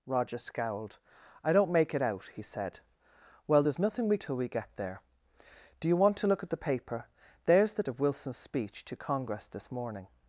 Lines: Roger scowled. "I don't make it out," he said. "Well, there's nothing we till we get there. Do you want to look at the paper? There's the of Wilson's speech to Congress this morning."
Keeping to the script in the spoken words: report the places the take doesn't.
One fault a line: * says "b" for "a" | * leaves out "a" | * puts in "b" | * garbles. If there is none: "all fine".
all fine